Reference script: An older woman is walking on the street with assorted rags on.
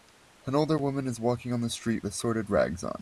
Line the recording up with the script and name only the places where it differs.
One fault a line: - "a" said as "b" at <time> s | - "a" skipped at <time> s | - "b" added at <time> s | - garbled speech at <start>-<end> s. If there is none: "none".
- "with" skipped at 2.0 s